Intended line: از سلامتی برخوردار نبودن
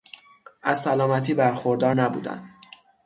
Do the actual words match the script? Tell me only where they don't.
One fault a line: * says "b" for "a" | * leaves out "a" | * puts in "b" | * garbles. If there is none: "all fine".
all fine